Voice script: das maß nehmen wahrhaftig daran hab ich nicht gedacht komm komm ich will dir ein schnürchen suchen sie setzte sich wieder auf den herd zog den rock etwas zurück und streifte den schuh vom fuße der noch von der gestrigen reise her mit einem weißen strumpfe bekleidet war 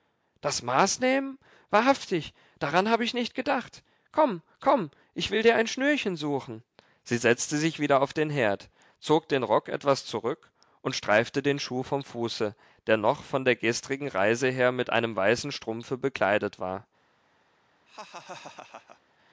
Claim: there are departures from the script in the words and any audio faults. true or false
true